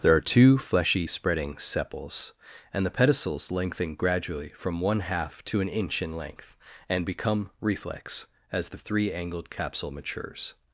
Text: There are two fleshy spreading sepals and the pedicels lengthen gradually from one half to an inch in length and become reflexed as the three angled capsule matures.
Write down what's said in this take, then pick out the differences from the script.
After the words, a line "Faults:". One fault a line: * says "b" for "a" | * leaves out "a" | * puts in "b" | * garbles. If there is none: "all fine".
There are two fleshy spreading sepals and the pedicels lengthen gradually from one half to an inch in length and become reflex as the three angled capsule matures.
Faults:
* says "reflex" for "reflexed"